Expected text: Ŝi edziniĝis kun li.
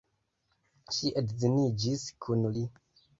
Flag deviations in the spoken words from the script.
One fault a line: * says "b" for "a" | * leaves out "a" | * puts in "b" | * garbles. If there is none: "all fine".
all fine